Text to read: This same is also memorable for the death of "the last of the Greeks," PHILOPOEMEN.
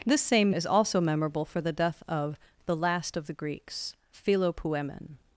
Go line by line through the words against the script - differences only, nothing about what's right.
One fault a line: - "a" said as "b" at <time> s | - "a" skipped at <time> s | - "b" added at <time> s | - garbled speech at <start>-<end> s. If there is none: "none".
none